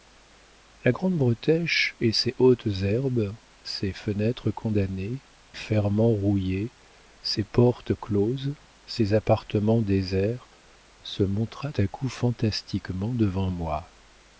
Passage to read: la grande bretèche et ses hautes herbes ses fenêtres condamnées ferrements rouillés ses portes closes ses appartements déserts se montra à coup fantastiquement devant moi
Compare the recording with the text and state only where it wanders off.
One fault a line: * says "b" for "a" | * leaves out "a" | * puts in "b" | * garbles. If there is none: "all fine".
all fine